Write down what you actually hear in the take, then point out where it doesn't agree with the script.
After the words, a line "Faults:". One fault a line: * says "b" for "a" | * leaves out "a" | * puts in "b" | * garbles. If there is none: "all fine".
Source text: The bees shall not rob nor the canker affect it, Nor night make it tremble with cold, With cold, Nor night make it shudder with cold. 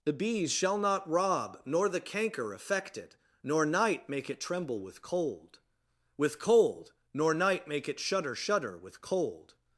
The bees shall not rob nor the canker affect it, Nor night make it tremble with cold, With cold, Nor night make it shudder shudder with cold.
Faults:
* puts in "shudder"